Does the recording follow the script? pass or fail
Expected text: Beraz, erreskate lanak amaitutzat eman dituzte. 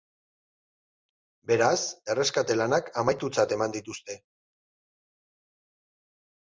pass